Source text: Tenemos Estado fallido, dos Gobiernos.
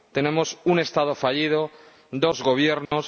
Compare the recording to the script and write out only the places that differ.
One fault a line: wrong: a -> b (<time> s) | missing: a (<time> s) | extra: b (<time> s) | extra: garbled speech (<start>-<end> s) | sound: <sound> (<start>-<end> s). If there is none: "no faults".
extra: un (0.6 s)
sound: dropout (2.9-2.9 s)